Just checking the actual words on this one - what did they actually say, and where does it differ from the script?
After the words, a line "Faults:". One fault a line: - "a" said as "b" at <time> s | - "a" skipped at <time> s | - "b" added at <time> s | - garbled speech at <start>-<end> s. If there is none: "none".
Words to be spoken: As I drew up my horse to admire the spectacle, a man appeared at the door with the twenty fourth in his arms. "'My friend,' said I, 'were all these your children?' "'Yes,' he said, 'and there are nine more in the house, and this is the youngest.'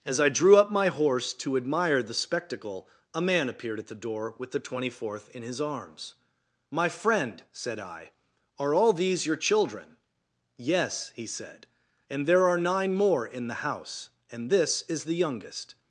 As I drew up my horse to admire the spectacle, a man appeared at the door with the twenty fourth in his arms. "'My friend,' said I, 'are all these your children?' "'Yes,' he said, 'and there are nine more in the house, and this is the youngest.'
Faults:
- "were" said as "are" at 8.6 s